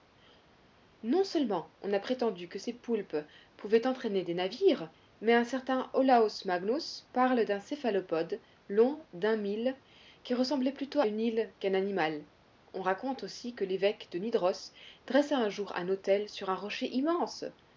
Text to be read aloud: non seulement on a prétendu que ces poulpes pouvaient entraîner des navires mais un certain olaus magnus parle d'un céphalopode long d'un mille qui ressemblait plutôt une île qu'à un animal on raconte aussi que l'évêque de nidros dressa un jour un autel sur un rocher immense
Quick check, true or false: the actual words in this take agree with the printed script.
true